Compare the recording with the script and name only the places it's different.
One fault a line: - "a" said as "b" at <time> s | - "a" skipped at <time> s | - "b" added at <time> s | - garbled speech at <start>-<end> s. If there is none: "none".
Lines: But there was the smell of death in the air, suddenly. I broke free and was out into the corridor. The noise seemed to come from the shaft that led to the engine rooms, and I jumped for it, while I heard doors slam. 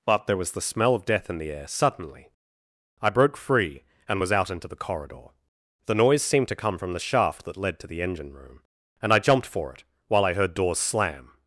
- "rooms" said as "room" at 8.3 s